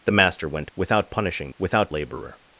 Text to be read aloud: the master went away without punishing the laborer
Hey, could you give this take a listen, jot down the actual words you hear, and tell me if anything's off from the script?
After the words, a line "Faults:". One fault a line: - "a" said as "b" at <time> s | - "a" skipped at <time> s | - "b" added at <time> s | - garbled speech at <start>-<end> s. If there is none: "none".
the master went without punishing without laborer
Faults:
- "away" skipped at 0.7 s
- "the" said as "without" at 1.6 s